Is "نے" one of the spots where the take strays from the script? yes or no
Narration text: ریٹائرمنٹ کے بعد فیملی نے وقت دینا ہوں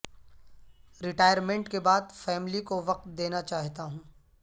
yes